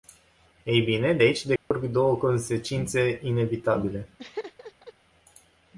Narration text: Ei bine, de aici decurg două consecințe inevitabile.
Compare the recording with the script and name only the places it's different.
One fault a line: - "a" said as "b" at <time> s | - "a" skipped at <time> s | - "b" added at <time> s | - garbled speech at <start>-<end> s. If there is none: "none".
none